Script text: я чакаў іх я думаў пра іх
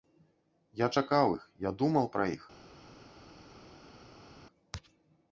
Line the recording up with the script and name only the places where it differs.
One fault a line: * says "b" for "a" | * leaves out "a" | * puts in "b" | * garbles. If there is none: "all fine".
all fine